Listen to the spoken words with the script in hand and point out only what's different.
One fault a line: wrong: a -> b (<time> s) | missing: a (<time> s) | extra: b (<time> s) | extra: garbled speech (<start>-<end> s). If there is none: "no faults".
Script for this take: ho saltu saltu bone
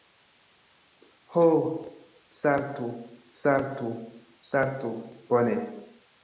extra: saltu (4.4 s)